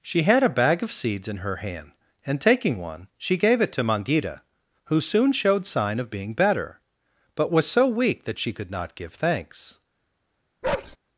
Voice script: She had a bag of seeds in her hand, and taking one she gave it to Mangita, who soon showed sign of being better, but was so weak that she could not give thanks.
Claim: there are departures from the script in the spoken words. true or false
false